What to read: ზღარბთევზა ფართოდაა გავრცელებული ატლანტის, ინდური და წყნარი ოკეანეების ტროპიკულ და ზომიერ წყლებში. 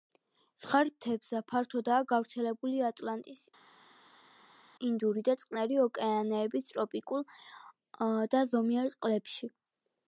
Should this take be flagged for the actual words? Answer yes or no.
no